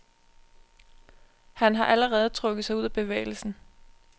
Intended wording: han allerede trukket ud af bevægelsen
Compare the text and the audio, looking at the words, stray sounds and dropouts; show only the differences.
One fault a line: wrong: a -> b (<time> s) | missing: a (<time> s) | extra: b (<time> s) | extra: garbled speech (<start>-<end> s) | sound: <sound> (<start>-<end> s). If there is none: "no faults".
extra: har (1.8 s)
extra: sig (2.6 s)